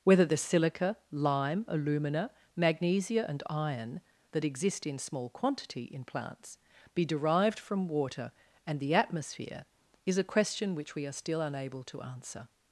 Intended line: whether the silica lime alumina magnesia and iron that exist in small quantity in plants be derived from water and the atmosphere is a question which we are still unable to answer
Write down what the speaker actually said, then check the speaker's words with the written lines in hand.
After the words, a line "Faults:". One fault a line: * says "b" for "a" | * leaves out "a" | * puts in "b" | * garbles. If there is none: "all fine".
whether the silica lime alumina magnesia and iron that exist in small quantity in plants be derived from water and the atmosphere is a question which we are still unable to answer
Faults:
all fine